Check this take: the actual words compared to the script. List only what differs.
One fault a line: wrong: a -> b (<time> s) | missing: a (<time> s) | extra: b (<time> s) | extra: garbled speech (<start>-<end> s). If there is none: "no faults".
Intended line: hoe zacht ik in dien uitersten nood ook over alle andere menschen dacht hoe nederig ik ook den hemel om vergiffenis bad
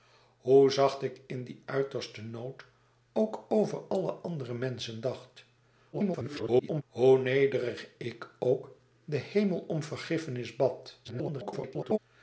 extra: garbled speech (5.9-6.8 s)
extra: garbled speech (11.0-12.0 s)